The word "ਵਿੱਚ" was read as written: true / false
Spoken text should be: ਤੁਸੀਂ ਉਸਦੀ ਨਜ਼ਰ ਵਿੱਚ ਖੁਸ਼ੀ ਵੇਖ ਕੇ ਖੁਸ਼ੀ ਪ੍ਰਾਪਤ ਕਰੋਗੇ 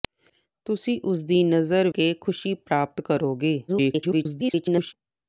false